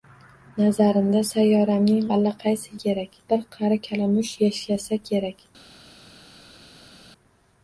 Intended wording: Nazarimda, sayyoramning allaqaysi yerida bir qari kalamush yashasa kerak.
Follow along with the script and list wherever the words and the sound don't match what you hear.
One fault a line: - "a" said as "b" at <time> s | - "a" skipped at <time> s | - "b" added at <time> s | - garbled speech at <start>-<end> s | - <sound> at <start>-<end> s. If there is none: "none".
- "yerida" said as "kerak" at 2.9 s